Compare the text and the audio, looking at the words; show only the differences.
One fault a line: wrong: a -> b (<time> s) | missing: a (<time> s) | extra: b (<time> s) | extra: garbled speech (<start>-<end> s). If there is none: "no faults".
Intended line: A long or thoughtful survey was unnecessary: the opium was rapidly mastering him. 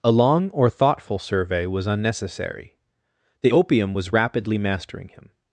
no faults